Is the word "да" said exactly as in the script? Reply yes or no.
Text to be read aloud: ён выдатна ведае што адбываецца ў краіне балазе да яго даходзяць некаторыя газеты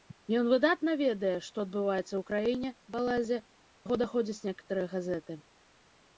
no